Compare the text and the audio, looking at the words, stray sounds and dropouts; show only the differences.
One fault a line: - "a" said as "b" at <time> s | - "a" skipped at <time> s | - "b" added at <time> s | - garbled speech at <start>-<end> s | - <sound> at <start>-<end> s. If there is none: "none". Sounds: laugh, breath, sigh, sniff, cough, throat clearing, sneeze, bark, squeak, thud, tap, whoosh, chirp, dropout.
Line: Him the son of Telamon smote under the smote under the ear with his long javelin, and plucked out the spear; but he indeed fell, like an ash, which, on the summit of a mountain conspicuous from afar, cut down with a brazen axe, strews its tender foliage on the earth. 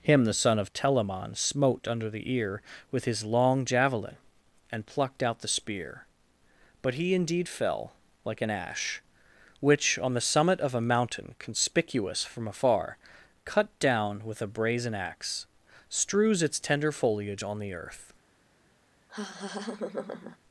- "smote under the" skipped at 2.3 s
- laugh at 19.1-20.4 s